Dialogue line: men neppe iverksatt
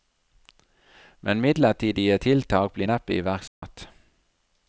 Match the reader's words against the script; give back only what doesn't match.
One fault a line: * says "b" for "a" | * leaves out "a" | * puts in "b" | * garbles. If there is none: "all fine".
* puts in "midlertidige tiltak blir"